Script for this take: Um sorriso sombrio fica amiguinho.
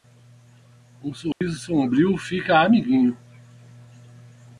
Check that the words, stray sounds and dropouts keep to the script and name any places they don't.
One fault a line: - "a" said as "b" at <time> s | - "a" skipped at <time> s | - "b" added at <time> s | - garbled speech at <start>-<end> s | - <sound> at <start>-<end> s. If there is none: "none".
- dropout at 1.3-1.4 s